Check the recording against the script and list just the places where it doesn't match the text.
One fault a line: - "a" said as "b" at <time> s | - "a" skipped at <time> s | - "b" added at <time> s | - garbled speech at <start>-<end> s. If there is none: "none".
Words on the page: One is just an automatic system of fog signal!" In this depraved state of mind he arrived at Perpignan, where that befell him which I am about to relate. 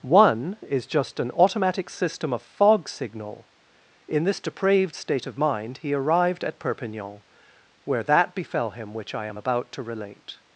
none